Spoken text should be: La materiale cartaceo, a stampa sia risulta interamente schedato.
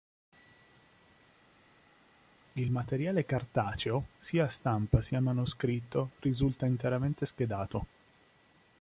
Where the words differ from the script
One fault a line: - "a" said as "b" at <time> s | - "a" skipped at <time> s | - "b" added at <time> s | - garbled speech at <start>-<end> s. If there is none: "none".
- "La" said as "Il" at 2.5 s
- "sia" added at 4.2 s
- "manoscritto" added at 5.2 s